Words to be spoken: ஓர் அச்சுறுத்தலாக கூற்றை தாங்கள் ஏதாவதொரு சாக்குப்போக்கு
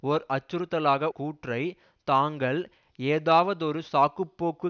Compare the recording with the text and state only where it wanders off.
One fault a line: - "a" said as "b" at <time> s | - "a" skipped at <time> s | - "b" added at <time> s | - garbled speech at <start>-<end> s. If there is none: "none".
none